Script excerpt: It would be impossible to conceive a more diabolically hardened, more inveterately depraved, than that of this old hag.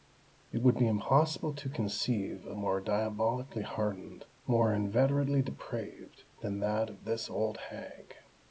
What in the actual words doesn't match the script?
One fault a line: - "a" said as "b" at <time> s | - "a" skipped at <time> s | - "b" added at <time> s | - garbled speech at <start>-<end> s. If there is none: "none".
none